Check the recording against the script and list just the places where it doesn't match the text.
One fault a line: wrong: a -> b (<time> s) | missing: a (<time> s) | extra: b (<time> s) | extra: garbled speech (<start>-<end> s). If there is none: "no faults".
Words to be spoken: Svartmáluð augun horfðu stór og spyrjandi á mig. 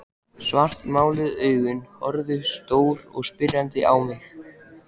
no faults